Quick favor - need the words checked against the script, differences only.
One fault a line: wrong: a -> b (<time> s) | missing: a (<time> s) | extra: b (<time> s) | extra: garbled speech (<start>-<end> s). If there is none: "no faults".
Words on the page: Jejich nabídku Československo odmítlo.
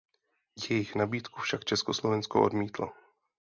extra: však (1.4 s)